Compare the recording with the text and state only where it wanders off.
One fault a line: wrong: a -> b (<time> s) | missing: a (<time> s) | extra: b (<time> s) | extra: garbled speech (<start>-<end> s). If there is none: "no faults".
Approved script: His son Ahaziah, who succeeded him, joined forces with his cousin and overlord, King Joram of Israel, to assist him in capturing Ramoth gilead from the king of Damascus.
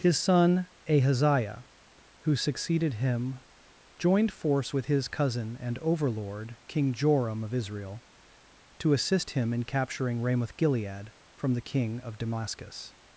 wrong: forces -> force (4.3 s)